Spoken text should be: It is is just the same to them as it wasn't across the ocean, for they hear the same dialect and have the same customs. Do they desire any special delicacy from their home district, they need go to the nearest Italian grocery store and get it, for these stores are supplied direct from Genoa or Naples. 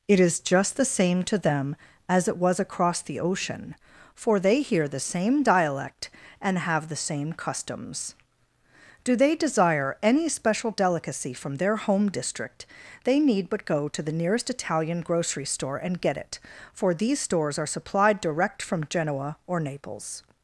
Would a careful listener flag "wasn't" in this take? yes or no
yes